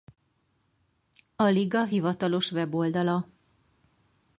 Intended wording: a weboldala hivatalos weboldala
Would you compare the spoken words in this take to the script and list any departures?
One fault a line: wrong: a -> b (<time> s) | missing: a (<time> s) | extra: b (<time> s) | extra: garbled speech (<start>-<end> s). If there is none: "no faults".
wrong: weboldala -> liga (1.6 s)